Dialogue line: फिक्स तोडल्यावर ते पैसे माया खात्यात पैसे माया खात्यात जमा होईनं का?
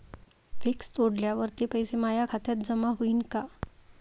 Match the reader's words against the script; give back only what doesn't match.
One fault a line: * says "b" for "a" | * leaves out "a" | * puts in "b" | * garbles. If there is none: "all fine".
* leaves out "पैसे माया खात्यात"